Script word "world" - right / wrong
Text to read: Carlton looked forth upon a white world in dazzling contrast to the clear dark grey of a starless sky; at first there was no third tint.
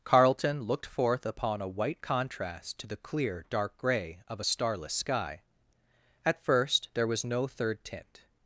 wrong